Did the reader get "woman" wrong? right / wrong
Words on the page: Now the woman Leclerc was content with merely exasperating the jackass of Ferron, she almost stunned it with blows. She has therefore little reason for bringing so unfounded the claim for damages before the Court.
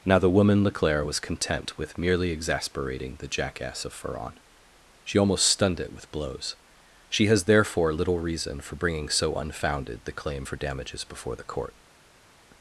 right